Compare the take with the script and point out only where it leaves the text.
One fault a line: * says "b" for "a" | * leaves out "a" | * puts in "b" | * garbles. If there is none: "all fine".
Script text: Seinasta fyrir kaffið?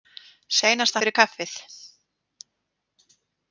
all fine